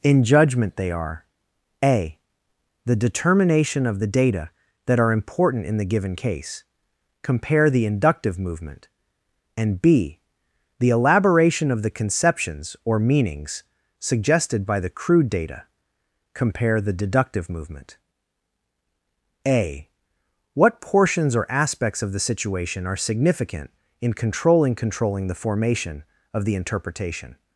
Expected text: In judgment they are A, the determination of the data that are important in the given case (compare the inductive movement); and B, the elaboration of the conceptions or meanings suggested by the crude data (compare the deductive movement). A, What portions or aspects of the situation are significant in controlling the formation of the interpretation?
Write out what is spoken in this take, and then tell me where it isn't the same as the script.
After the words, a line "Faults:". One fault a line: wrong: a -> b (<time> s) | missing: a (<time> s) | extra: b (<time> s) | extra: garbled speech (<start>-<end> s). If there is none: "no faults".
In judgment they are A, the determination of the data that are important in the given case (compare the inductive movement); and B, the elaboration of the conceptions or meanings suggested by the crude data (compare the deductive movement). A, What portions or aspects of the situation are significant in controlling controlling the formation of the interpretation?
Faults:
extra: controlling (24.7 s)